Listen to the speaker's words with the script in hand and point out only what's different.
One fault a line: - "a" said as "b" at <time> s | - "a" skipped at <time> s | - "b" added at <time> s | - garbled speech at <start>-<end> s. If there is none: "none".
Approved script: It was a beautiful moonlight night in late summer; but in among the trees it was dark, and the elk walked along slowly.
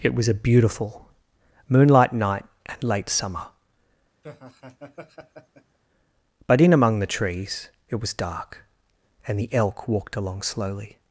- "in" said as "and" at 2.6 s